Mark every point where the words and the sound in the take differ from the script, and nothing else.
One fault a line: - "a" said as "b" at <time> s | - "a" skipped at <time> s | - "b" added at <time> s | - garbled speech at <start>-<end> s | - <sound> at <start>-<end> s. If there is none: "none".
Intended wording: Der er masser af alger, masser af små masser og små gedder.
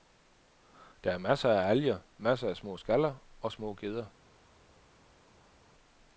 - "masser" said as "skaller" at 2.8 s